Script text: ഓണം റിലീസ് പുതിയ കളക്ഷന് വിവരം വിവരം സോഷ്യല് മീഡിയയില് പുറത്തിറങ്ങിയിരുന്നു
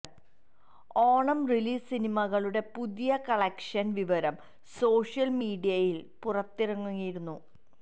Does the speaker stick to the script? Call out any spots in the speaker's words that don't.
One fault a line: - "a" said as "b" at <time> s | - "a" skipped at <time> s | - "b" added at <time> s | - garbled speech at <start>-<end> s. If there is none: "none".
- "സിനിമകളുടെ" added at 1.9 s
- "വിവരം" skipped at 4.4 s